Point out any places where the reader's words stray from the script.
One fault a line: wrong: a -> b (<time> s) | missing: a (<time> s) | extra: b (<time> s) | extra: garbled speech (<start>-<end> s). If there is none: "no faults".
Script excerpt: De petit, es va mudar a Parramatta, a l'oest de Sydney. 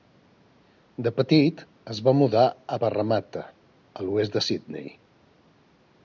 no faults